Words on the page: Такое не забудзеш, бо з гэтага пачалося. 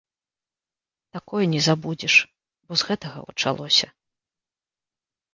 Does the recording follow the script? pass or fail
pass